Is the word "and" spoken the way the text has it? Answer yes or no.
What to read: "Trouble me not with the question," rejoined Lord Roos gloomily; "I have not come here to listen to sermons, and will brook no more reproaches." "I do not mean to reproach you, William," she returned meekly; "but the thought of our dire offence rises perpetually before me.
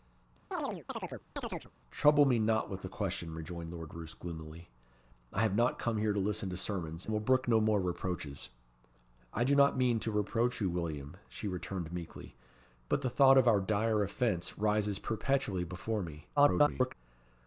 no